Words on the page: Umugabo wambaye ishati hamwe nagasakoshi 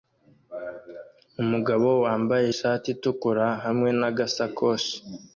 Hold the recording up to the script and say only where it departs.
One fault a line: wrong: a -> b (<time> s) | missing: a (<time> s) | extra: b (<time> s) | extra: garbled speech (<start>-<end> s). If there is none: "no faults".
extra: itukura (3.0 s)